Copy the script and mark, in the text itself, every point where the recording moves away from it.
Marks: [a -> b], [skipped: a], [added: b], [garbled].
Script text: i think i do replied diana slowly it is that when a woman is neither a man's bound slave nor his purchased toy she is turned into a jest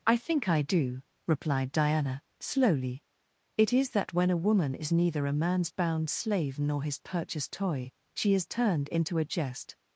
i think i do replied diana slowly it is that when a woman is neither a man's bound slave nor his purchased toy she is turned into a jest